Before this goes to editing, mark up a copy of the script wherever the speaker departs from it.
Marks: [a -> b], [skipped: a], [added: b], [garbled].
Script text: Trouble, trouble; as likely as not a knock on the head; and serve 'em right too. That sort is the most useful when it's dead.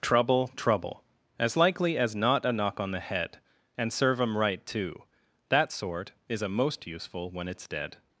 Trouble, trouble; as likely as not a knock on the head; and serve 'em right too. That sort is [the -> a] most useful when it's dead.